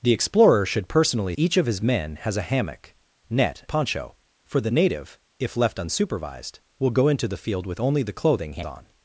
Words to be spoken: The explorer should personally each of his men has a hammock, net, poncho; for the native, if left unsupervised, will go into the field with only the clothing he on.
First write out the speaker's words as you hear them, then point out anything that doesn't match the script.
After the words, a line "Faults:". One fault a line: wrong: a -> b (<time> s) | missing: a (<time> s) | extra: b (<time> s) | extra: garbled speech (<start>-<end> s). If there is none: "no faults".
The explorer should personally each of his men has a hammock, net, poncho; for the native, if left unsupervised, will go into the field with only the clothing he on.
Faults:
no faults